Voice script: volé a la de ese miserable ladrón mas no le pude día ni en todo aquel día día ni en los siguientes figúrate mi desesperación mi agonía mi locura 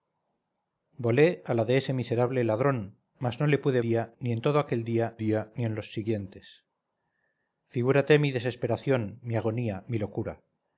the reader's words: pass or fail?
pass